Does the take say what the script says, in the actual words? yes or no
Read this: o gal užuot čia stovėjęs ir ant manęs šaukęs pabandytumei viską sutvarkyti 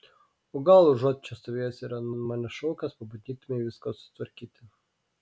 no